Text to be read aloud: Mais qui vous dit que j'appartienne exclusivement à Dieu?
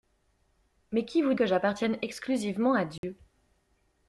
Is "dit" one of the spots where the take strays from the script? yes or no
yes